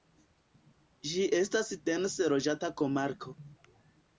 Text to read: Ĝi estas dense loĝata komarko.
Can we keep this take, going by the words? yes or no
yes